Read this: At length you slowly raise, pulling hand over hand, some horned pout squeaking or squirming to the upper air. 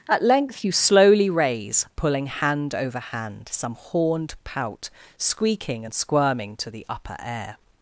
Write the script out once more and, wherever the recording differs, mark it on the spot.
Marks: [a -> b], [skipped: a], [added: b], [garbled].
At length you slowly raise, pulling hand over hand, some horned pout squeaking [or -> and] squirming to the upper air.